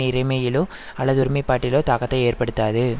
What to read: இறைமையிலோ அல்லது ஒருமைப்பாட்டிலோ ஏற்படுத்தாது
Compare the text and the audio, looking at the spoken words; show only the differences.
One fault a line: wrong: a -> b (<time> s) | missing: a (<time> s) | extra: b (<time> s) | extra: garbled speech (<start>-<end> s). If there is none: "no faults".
extra: தாக்கத்தை (1.8 s)